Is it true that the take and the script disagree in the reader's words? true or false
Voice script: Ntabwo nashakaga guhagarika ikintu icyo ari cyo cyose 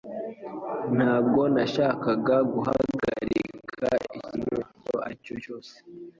false